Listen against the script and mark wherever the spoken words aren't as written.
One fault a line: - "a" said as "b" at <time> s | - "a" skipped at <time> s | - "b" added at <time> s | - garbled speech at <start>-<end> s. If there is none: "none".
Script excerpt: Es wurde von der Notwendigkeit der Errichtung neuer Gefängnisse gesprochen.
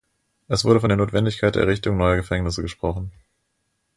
none